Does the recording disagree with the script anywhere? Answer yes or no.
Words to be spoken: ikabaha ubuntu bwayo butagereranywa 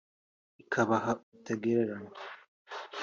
yes